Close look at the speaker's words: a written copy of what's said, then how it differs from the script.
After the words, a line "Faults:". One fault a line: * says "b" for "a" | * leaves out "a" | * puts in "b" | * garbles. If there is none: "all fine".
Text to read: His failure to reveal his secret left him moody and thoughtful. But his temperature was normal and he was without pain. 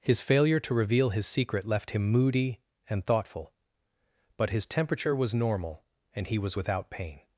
His failure to reveal his secret left him moody and thoughtful. But his temperature was normal and he was without pain.
Faults:
all fine